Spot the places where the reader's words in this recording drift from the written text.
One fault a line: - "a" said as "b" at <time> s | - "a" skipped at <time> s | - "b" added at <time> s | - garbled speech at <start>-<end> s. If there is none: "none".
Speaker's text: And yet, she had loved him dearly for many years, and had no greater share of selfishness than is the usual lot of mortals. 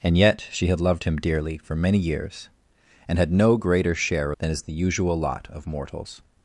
- "of selfishness" skipped at 4.3 s